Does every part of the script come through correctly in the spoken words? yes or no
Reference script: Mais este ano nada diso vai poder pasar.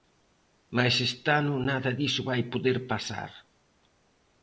yes